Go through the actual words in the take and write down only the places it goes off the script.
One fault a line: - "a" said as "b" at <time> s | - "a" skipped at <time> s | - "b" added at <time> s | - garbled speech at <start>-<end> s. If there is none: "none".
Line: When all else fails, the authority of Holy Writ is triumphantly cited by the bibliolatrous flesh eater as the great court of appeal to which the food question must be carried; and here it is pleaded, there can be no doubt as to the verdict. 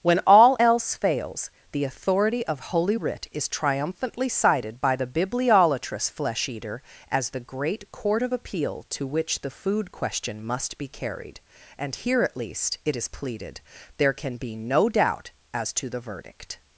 - "at least" added at 12.2 s